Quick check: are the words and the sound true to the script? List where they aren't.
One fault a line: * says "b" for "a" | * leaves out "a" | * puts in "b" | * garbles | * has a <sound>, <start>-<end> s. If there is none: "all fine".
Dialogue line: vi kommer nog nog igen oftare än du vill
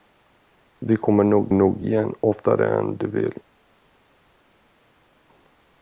all fine